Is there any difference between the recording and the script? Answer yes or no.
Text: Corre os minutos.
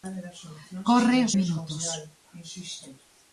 no